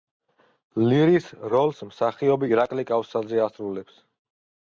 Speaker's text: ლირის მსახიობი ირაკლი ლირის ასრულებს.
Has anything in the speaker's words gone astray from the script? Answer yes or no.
yes